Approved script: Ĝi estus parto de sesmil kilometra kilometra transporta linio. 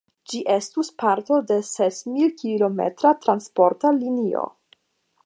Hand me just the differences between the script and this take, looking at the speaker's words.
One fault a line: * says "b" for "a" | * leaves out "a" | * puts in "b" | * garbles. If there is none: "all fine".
* leaves out "kilometra"